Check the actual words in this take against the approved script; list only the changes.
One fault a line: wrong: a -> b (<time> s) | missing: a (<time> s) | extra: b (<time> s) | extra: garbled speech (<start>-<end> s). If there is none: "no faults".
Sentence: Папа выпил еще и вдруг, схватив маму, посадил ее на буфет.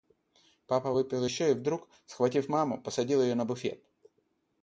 no faults